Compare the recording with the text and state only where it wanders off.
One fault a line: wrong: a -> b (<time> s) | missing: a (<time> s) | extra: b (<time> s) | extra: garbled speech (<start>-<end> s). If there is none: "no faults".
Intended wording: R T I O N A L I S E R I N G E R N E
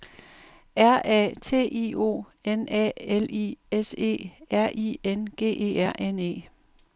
extra: A (1.1 s)